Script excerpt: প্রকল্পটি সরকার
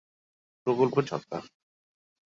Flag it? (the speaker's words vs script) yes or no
no